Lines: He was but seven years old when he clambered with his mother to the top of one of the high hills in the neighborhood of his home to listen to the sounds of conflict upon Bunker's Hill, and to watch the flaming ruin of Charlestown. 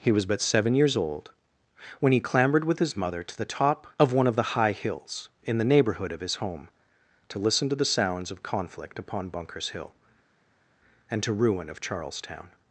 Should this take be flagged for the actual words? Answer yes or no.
yes